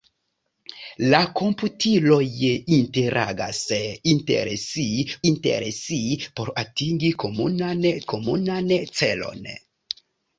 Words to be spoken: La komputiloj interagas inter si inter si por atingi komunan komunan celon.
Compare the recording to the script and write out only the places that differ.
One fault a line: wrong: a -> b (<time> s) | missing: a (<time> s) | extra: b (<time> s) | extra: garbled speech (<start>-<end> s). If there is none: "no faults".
no faults